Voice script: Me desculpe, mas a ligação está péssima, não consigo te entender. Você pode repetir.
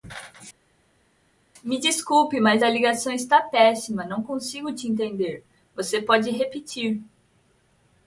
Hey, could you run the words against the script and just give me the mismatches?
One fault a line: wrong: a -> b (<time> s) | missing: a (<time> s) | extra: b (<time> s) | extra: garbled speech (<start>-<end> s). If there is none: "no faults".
no faults